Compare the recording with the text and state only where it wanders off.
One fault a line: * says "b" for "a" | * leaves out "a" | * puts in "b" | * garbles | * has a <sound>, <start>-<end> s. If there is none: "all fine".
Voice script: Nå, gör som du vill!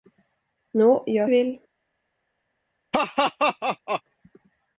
* leaves out "som du"
* has a laugh, 2.9-4.0 s